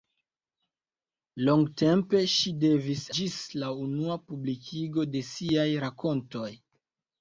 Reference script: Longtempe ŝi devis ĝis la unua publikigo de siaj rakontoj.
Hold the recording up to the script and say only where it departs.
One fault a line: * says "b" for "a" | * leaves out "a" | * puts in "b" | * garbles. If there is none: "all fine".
all fine